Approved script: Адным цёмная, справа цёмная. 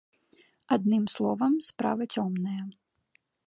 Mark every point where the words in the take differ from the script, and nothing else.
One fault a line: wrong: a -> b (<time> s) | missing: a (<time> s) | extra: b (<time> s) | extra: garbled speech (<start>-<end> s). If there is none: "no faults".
wrong: цёмная -> словам (1.1 s)